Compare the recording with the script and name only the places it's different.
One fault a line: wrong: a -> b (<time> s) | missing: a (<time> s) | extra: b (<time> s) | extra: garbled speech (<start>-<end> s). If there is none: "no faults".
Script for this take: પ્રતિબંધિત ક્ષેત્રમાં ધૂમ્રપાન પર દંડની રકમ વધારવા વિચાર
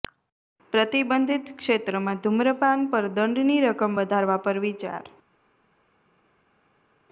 extra: પર (4.4 s)